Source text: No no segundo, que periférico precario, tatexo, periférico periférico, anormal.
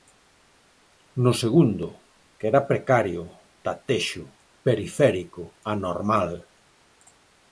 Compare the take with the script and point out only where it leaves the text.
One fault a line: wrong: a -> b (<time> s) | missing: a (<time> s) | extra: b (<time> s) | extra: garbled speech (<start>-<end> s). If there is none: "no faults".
missing: no (1.3 s)
wrong: periférico -> era (2.5 s)
missing: periférico (5.4 s)